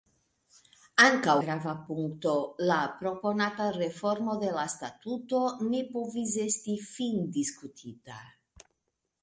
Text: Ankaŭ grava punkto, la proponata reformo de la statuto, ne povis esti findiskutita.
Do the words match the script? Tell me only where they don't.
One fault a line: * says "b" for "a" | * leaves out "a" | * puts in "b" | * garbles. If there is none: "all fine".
all fine